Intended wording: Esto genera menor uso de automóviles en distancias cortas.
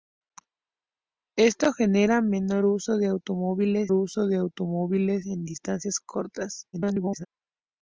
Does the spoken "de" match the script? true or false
true